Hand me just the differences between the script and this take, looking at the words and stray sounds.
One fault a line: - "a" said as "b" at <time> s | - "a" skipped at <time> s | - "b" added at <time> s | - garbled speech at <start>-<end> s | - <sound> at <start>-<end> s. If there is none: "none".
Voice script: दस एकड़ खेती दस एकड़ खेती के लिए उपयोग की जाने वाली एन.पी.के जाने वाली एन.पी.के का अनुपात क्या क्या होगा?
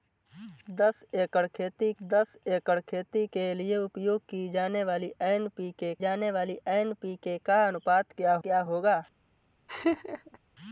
- laugh at 9.7-10.4 s